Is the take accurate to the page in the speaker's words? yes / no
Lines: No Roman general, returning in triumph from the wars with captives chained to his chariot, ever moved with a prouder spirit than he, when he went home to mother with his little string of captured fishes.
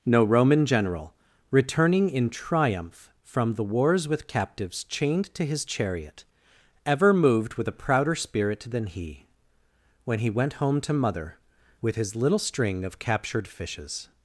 yes